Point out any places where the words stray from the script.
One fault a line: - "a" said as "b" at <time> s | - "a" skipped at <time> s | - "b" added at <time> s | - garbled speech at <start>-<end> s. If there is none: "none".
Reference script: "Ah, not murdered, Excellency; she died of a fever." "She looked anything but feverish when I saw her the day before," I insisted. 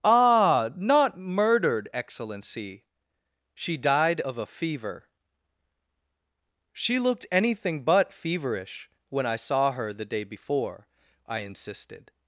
none